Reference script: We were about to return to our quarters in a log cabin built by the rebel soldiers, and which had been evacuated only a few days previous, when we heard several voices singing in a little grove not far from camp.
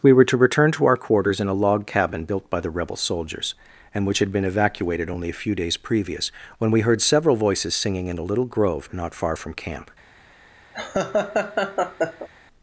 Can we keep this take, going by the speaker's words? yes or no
no